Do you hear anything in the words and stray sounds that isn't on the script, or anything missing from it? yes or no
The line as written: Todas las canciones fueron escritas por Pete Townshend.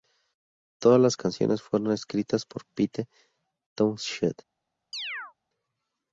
yes